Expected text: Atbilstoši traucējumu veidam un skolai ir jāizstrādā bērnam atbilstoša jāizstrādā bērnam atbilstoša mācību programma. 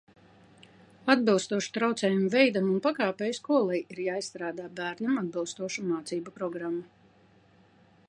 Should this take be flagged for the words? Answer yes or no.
yes